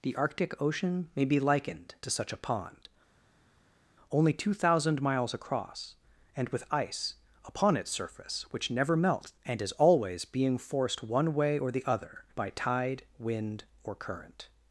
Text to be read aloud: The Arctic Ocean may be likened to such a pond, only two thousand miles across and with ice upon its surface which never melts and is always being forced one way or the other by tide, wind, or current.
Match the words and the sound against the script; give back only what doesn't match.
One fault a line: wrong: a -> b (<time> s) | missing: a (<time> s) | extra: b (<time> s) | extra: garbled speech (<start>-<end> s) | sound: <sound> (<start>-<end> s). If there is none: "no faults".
no faults